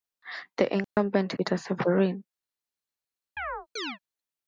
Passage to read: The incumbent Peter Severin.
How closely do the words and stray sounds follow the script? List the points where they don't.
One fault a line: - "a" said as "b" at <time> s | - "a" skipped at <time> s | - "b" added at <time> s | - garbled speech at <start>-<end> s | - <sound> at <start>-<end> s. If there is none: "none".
- dropout at 0.8-1.0 s
- chirp at 3.4-4.0 s